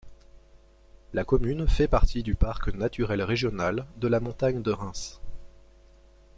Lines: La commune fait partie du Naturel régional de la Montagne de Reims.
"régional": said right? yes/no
yes